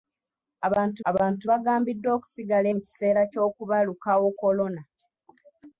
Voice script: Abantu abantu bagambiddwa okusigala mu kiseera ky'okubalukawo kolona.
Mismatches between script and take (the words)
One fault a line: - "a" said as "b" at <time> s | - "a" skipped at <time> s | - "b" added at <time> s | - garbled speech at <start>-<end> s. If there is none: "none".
none